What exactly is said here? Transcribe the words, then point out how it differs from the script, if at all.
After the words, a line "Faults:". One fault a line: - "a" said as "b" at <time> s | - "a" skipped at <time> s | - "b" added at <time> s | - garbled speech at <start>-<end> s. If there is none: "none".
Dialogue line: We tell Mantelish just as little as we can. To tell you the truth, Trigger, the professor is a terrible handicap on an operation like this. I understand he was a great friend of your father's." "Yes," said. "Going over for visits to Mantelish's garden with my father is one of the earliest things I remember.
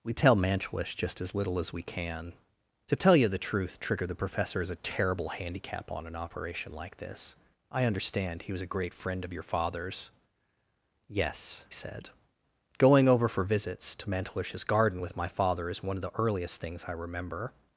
We tell Mantelish just as little as we can. To tell you the truth, Trigger, the professor is a terrible handicap on an operation like this. I understand he was a great friend of your father's." "Yes," said. "Going over for visits to Mantelish's garden with my father is one of the earliest things I remember.
Faults:
none